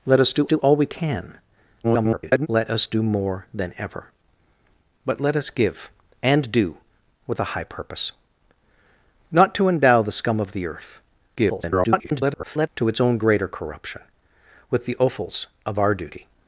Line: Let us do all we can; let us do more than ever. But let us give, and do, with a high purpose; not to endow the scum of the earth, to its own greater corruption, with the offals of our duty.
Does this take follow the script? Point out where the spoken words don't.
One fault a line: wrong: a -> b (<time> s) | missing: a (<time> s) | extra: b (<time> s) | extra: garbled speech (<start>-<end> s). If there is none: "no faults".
extra: do (0.5 s)
extra: garbled speech (1.8-2.5 s)
extra: garbled speech (11.3-12.7 s)